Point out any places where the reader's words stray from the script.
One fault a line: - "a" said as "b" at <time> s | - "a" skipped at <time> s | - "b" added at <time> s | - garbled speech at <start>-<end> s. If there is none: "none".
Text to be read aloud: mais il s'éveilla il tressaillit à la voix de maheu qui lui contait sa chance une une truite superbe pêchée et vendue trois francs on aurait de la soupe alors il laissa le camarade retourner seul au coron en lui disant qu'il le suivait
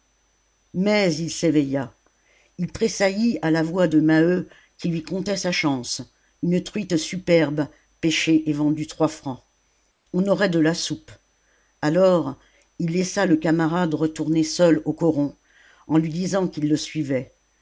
- "une" skipped at 6.6 s